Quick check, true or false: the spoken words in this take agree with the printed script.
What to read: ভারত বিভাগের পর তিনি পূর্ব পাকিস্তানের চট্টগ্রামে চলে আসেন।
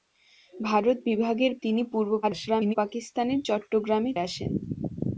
false